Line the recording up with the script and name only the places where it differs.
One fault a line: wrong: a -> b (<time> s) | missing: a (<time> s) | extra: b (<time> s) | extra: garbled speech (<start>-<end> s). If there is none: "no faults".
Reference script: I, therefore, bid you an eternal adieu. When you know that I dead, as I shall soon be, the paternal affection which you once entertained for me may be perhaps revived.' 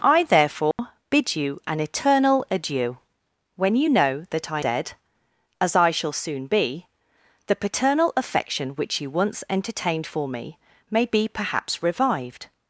no faults